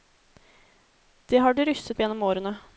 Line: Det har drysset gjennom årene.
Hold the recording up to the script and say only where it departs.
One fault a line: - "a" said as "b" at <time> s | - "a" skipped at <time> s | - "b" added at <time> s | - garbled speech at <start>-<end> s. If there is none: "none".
none